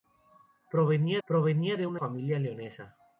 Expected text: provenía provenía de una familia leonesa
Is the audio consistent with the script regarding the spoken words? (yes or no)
yes